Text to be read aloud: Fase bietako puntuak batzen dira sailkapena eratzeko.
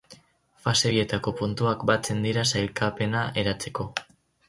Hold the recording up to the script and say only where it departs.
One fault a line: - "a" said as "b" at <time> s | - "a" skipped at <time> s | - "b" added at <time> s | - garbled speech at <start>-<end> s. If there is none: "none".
none